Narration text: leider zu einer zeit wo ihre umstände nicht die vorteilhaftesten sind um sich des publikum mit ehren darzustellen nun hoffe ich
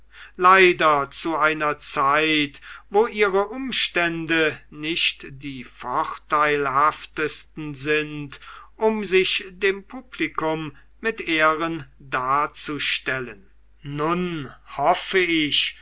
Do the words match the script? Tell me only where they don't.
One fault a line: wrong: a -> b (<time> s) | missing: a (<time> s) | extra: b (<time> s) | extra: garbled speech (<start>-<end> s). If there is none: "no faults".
wrong: des -> dem (9.5 s)